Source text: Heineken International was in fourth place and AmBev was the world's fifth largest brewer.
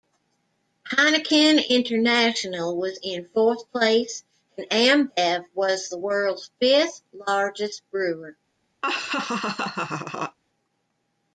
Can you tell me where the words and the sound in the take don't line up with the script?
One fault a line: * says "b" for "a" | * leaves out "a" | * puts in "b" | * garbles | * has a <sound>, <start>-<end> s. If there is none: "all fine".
* has a laugh, 8.8-10.4 s